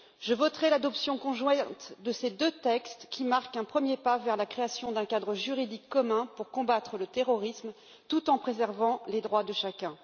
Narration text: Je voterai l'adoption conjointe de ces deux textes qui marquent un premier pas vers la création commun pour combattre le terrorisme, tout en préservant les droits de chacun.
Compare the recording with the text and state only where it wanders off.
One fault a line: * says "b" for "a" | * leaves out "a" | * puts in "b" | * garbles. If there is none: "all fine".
* puts in "d'un cadre juridique"